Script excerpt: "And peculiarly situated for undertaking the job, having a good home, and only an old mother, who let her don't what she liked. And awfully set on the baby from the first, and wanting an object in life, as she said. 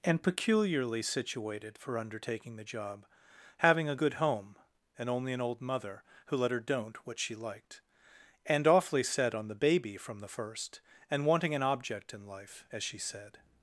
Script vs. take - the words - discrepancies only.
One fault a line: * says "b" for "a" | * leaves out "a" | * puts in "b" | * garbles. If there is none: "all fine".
all fine